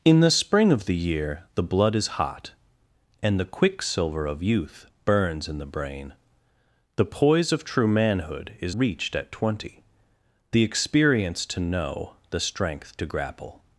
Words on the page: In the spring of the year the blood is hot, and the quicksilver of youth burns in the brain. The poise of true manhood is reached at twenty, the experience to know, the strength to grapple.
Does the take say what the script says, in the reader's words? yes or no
yes